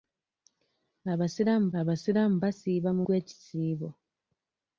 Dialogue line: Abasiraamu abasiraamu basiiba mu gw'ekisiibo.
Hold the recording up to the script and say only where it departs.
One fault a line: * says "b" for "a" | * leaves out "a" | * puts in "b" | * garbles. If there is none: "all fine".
all fine